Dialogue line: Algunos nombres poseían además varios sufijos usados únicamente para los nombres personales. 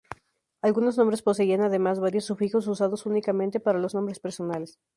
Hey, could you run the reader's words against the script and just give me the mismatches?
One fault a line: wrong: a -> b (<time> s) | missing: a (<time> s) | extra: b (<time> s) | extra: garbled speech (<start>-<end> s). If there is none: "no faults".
no faults